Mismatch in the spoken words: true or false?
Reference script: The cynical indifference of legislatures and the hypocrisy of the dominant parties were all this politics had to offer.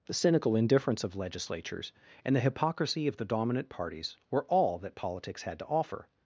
true